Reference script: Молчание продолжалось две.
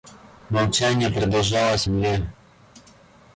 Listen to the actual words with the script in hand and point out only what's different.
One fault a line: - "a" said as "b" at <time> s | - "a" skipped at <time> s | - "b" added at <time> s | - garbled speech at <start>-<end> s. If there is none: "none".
none